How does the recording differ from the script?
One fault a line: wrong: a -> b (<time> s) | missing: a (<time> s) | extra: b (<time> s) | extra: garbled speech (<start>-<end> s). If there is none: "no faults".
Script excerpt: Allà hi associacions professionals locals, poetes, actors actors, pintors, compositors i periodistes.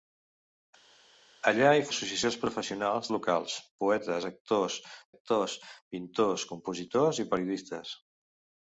no faults